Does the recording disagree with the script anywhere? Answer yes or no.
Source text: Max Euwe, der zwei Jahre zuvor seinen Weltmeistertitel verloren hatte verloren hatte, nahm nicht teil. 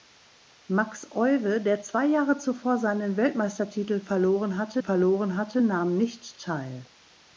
no